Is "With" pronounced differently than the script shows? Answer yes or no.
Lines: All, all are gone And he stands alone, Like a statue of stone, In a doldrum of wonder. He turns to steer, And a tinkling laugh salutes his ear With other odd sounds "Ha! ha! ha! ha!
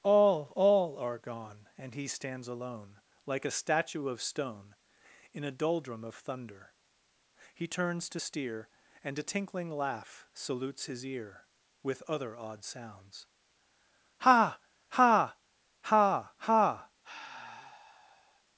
no